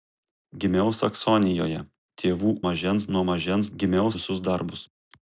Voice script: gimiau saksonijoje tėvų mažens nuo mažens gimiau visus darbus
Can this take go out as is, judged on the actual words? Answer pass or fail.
pass